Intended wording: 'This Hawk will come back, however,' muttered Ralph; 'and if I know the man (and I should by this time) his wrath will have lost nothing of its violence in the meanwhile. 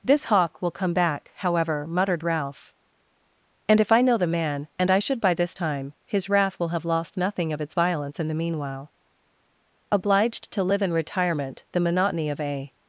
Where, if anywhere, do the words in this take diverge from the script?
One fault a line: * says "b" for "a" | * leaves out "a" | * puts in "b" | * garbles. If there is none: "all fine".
* puts in "Obliged to live in retirement the monotony of a"